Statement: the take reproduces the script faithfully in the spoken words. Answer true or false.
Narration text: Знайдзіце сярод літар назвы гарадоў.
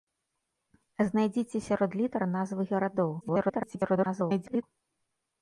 false